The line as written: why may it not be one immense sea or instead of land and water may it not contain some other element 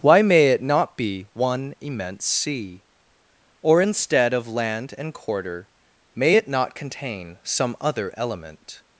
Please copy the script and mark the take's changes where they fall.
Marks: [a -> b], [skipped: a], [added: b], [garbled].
why may it not be one immense sea or instead of land and [water -> quarter] may it not contain some other element